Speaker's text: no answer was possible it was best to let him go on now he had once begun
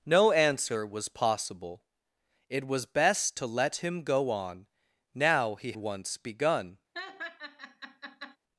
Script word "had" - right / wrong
wrong